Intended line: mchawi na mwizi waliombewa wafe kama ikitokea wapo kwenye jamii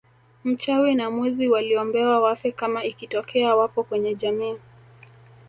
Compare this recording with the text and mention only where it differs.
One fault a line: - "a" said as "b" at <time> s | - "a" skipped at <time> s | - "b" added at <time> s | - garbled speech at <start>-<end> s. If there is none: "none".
none